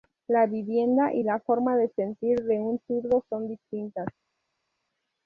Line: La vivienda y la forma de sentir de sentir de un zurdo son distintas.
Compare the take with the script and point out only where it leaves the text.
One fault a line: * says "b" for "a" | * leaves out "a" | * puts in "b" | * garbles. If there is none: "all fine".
* leaves out "sentir de"